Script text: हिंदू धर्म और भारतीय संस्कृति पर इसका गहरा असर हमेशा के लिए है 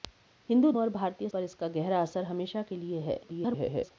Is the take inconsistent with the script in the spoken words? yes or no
yes